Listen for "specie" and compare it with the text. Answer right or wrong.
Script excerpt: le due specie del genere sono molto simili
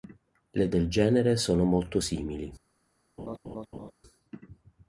wrong